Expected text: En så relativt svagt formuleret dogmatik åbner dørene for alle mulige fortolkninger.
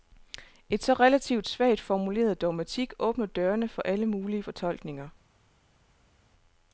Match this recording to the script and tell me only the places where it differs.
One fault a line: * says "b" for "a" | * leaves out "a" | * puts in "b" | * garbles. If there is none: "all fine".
all fine